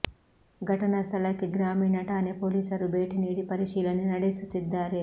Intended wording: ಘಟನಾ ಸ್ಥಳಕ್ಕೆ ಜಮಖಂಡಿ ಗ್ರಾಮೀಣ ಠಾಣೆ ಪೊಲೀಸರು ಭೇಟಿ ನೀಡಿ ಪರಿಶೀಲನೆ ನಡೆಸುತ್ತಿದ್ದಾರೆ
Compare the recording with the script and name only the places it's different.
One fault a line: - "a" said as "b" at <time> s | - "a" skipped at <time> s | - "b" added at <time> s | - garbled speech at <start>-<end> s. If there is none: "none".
- "ಜಮಖಂಡಿ" skipped at 1.5 s